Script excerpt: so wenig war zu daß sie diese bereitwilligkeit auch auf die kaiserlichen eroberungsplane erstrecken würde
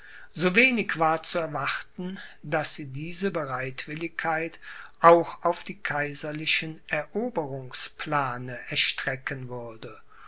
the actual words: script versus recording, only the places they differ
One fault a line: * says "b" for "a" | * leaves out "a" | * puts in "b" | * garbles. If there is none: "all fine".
* puts in "erwarten"